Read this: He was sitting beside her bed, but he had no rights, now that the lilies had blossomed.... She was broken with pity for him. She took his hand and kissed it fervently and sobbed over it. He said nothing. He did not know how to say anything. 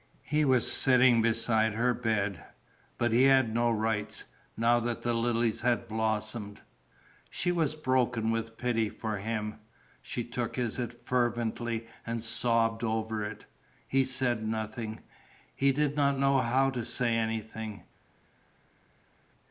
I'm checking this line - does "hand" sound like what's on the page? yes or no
no